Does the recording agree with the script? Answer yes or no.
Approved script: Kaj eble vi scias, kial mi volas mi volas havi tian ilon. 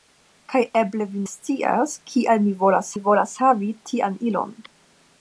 yes